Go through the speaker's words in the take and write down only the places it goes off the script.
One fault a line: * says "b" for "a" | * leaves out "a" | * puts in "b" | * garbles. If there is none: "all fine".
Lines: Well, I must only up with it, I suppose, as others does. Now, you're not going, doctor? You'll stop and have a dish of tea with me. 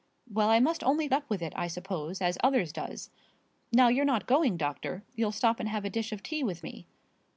all fine